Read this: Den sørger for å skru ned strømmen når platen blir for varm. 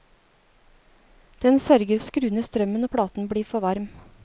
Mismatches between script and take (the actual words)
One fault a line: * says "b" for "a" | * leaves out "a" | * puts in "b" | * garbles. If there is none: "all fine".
* leaves out "for"